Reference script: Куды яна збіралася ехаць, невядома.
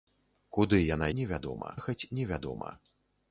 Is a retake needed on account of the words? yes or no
yes